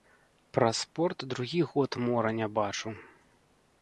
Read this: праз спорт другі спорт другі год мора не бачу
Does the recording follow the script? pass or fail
fail